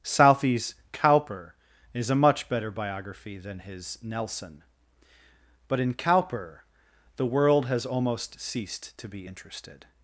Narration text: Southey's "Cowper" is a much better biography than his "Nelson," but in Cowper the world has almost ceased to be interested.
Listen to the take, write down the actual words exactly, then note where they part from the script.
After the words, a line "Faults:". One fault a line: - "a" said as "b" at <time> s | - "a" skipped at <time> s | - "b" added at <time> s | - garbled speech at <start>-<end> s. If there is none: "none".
Southey's "Cowper" is a much better biography than his "Nelson," but in Cowper the world has almost ceased to be interested.
Faults:
none